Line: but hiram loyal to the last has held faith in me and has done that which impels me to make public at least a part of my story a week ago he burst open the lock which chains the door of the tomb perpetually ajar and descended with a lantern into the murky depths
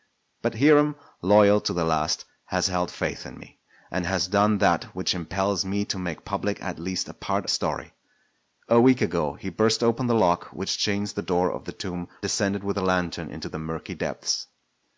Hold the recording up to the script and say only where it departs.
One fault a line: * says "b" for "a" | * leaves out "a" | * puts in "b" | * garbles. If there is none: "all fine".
* leaves out "of my"
* leaves out "perpetually ajar and"